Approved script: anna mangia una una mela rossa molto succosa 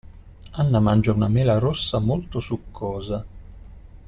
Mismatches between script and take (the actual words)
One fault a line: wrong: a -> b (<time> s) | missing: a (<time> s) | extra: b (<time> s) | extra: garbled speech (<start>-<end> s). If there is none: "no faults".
missing: una (1.3 s)